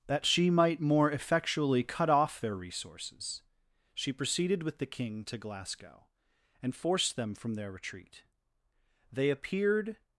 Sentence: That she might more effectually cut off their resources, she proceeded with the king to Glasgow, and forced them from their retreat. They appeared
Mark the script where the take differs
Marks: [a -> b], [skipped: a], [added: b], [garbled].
That she might more effectually cut off their resources, she proceeded with the king to Glasgow, and forced them from their retreat. They appeared